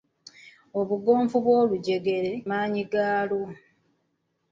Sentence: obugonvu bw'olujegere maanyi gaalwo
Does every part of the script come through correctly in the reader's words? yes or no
yes